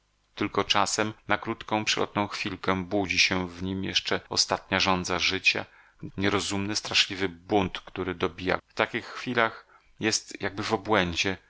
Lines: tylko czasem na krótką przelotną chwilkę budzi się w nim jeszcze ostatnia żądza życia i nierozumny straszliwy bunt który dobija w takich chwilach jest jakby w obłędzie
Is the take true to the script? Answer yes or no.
yes